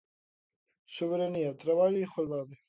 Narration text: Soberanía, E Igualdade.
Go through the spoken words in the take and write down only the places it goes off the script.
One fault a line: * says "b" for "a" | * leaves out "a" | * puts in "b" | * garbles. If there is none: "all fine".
* puts in "Traballo"